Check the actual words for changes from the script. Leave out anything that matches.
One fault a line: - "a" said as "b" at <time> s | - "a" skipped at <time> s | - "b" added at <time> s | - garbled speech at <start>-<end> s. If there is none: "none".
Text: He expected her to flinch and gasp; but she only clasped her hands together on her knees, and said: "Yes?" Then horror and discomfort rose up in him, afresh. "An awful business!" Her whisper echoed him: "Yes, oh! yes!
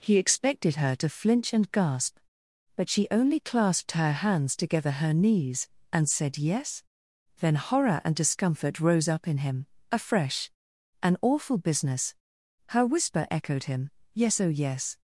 - "on" skipped at 4.9 s